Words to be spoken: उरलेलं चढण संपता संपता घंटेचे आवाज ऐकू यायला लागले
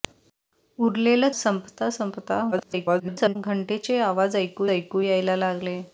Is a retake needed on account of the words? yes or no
yes